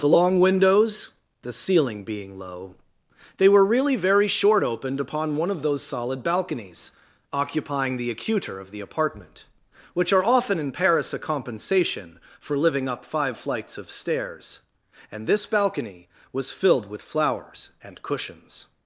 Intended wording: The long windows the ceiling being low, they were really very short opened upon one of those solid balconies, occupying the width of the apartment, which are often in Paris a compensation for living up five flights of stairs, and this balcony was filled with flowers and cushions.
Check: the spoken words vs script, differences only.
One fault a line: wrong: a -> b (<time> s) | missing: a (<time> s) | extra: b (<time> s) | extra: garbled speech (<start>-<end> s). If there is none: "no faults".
wrong: width -> acuter (8.1 s)